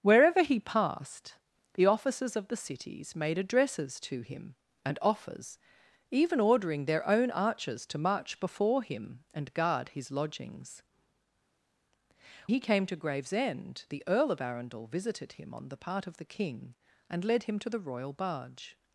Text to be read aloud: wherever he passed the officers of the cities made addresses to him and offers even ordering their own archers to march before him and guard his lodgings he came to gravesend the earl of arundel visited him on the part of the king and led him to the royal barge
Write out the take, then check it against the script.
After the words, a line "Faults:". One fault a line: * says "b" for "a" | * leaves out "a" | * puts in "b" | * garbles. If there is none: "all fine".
wherever he passed the officers of the cities made addresses to him and offers even ordering their own archers to march before him and guard his lodgings he came to gravesend the earl of arundel visited him on the part of the king and led him to the royal barge
Faults:
all fine